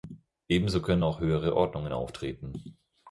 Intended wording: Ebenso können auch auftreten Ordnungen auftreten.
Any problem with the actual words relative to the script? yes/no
yes